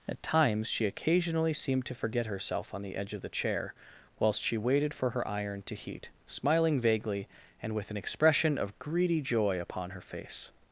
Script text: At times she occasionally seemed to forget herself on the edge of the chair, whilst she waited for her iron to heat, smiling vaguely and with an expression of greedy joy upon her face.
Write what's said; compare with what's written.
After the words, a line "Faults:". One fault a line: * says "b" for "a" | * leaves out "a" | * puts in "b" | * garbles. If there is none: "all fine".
At times she occasionally seemed to forget herself on the edge of the chair, whilst she waited for her iron to heat, smiling vaguely and with an expression of greedy joy upon her face.
Faults:
all fine